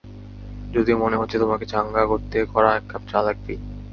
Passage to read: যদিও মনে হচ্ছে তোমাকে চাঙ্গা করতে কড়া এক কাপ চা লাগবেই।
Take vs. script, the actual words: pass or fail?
pass